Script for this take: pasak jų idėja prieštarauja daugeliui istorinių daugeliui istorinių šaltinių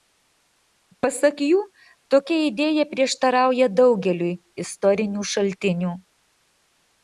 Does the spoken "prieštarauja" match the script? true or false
true